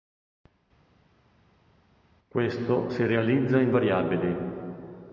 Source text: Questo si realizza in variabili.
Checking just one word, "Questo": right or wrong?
right